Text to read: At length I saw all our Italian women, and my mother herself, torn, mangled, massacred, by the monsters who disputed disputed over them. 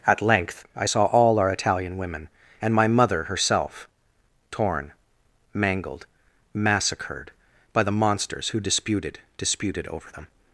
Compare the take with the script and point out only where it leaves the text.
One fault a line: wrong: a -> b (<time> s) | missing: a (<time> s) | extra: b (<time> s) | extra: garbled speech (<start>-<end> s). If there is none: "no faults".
no faults